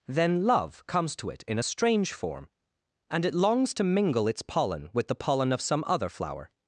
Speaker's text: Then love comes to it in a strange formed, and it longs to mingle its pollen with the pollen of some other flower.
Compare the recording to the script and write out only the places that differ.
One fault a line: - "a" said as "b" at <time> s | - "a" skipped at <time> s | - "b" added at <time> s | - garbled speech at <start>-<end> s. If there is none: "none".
- "formed" said as "form" at 2.1 s